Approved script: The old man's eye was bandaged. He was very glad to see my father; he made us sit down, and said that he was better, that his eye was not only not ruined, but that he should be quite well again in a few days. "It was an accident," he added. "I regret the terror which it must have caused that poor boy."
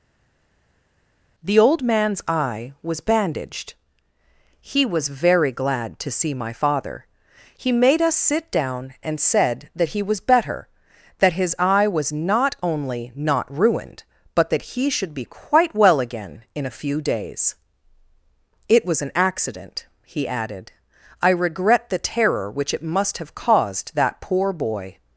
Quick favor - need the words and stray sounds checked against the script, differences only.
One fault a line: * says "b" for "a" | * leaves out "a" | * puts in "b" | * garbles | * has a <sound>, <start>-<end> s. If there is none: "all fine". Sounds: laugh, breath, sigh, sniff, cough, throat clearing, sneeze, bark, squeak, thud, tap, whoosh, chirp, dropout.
all fine